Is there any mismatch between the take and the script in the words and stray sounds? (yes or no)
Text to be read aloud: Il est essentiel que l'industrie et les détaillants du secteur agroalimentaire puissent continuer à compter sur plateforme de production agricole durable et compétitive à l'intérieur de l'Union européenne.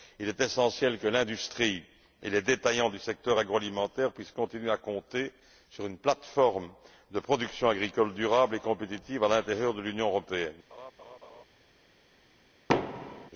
yes